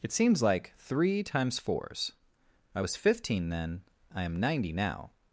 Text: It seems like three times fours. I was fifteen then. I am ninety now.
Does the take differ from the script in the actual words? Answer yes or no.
no